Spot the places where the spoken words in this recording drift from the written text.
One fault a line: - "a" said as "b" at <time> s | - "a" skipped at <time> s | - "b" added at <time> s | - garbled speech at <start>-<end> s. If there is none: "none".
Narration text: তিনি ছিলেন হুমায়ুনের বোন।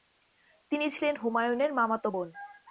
- "মামাতো" added at 1.7 s